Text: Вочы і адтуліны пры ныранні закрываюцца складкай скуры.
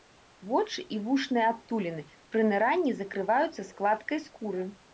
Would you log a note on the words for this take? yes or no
yes